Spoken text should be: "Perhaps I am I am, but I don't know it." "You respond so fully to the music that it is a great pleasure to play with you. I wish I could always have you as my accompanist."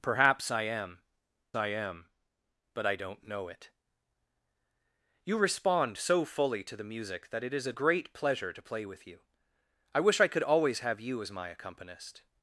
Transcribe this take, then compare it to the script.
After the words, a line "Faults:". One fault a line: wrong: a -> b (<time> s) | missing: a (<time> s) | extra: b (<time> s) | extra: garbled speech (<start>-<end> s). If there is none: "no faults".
"Perhaps I am I am, but I don't know it." "You respond so fully to the music that it is a great pleasure to play with you. I wish I could always have you as my accompanist."
Faults:
no faults